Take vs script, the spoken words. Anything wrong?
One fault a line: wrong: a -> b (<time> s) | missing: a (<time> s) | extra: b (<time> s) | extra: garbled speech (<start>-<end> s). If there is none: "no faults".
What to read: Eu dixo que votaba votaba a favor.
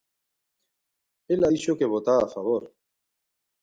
wrong: Eu -> Ela (1.3 s)
missing: votaba (2.2 s)